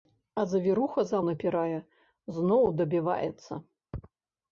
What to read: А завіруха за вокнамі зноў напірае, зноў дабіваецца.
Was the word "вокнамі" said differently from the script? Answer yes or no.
yes